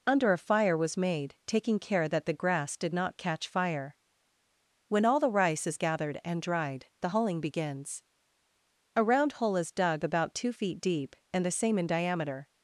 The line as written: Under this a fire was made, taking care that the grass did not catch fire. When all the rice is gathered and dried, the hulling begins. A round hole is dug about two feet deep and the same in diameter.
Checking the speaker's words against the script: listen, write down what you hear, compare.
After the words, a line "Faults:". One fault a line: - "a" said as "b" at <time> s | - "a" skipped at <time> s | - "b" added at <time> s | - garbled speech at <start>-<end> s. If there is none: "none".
Under a fire was made, taking care that the grass did not catch fire. When all the rice is gathered and dried, the hulling begins. A round hole is dug about two feet deep and the same in diameter.
Faults:
- "this" skipped at 0.3 s